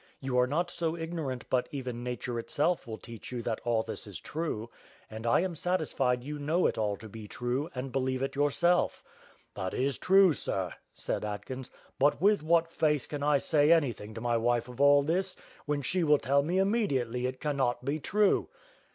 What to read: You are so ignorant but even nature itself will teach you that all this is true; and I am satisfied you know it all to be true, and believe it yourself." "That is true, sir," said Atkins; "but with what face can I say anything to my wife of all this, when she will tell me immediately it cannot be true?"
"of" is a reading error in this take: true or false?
false